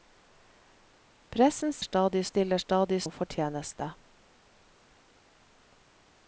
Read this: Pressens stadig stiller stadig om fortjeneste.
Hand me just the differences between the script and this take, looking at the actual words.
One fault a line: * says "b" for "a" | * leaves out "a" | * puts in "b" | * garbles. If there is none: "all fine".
all fine